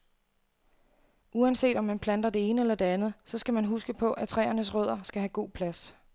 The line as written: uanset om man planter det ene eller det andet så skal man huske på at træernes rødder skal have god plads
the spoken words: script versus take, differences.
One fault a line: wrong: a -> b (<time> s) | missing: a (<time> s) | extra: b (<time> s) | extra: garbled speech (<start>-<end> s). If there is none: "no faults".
no faults